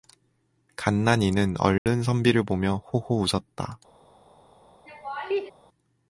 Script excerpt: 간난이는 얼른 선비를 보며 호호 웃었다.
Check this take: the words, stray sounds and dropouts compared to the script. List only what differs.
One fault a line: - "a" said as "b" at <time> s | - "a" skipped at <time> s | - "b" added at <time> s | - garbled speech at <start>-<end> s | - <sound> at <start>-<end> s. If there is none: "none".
- dropout at 1.8-1.9 s
- laugh at 4.9-5.5 s